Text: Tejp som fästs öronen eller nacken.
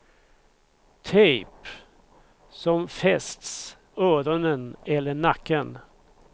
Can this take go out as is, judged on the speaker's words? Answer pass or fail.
pass